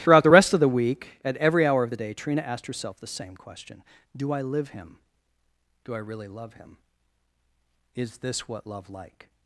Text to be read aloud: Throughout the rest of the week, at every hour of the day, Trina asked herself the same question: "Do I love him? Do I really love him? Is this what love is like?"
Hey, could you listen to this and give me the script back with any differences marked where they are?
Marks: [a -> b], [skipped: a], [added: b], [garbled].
Throughout the rest of the week, at every hour of the day, Trina asked herself the same question: "Do I [love -> live] him? Do I really love him? Is this what love [skipped: is] like?"